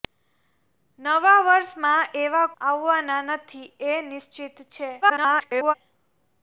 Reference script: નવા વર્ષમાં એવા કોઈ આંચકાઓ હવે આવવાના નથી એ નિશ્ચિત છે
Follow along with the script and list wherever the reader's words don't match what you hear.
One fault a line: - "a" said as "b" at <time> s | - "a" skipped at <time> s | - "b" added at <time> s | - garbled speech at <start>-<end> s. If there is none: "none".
- "કોઈ આંચકાઓ હવે" skipped at 2.5 s
- garbled speech at 5.0-5.7 s